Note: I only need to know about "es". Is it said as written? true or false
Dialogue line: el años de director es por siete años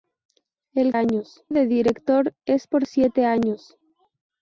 true